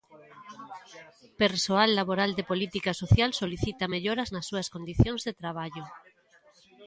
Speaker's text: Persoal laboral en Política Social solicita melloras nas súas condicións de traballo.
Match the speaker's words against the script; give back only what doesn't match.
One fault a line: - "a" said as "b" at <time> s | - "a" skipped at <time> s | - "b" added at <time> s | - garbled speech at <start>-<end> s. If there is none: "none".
- "en" said as "de" at 2.4 s